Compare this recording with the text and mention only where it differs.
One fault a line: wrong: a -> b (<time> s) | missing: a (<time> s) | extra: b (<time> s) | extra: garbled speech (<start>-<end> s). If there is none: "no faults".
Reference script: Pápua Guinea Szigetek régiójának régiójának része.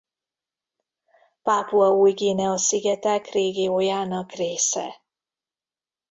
extra: Új (1.9 s)
missing: régiójának (4.3 s)